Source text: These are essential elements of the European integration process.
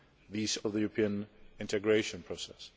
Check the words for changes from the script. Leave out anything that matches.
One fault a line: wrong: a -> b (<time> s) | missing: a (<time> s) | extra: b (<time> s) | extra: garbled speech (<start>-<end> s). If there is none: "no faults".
missing: are essential elements (0.6 s)